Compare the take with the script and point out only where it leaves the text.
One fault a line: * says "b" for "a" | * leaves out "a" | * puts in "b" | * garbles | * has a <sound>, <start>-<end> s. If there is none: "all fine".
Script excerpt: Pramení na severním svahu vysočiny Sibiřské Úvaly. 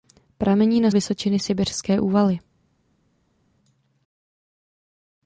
* leaves out "severním svahu"